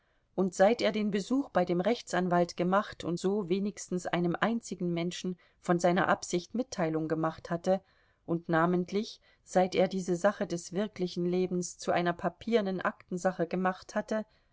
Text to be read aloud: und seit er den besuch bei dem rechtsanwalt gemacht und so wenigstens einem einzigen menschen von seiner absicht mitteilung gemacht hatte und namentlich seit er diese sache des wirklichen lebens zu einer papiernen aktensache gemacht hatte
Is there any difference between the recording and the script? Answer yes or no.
no